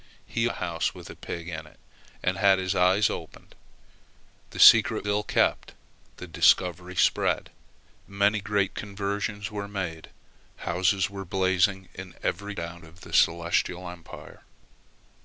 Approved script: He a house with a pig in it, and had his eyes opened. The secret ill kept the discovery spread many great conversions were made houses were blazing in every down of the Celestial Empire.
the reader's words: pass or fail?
pass